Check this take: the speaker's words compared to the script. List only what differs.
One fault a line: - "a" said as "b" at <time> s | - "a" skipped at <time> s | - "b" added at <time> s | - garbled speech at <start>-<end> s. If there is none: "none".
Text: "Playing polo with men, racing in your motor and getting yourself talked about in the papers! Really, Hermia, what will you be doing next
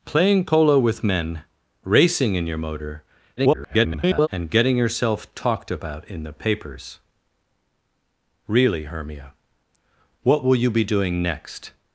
- garbled speech at 3.4-4.3 s